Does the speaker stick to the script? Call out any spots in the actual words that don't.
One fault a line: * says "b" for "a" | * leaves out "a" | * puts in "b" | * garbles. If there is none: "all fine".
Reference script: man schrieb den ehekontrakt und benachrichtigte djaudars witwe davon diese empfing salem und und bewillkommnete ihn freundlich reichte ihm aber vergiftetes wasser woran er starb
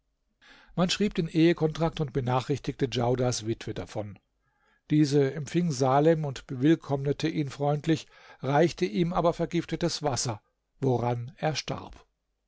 * leaves out "und"